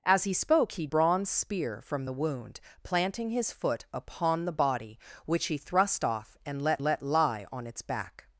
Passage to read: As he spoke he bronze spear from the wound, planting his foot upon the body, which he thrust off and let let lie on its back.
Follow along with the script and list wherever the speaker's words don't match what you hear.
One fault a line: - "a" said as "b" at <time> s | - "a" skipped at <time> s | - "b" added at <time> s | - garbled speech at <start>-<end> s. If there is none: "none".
none